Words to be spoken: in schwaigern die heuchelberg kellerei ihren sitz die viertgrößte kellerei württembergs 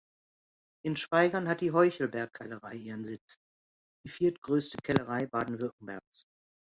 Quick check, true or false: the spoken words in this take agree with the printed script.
false